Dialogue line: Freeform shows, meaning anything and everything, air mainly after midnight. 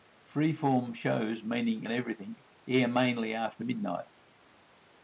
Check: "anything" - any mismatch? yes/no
yes